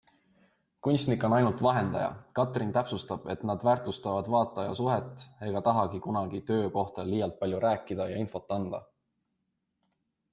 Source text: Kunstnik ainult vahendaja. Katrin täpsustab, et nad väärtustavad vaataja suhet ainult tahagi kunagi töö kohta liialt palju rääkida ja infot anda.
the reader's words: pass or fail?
fail